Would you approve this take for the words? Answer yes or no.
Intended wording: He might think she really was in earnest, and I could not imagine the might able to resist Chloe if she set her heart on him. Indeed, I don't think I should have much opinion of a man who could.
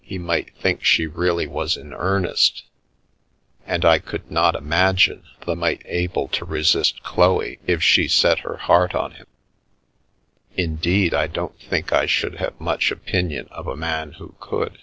yes